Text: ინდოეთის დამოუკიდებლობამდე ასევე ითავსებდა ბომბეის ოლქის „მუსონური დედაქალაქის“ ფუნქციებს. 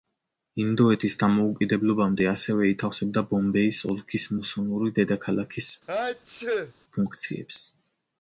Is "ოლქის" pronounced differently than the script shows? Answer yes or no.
no